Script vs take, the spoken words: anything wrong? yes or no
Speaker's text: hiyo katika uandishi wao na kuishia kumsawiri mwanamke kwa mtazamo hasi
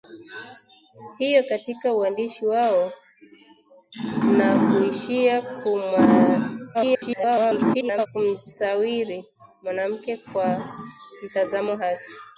yes